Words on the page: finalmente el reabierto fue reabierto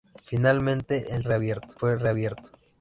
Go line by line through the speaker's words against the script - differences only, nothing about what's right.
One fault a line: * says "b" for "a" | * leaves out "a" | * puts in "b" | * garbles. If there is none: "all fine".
all fine